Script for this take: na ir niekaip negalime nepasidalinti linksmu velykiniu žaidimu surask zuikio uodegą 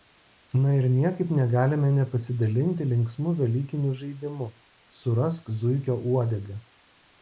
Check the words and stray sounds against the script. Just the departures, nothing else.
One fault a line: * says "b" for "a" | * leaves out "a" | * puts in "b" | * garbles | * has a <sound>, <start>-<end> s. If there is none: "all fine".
all fine